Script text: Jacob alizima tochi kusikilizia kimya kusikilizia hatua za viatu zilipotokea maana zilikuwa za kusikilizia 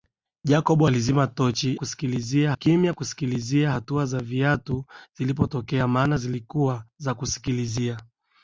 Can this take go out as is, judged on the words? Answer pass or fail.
pass